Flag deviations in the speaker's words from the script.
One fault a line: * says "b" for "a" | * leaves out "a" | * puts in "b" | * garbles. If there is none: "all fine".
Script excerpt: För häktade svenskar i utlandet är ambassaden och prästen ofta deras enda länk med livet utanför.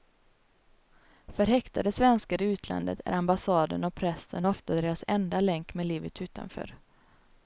all fine